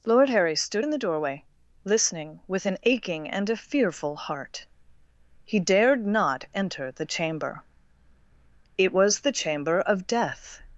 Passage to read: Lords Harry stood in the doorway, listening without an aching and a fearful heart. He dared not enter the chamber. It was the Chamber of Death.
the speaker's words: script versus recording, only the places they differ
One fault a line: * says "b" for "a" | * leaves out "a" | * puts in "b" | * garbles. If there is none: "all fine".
* says "Lord" for "Lords"
* says "with" for "without"